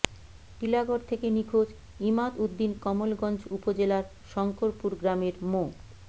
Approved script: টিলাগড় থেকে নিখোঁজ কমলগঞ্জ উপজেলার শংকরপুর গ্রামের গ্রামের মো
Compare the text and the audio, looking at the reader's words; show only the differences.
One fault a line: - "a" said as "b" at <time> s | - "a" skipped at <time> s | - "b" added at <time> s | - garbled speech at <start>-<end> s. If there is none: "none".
- "ইমাদ উদ্দিন" added at 2.0 s
- "গ্রামের" skipped at 5.3 s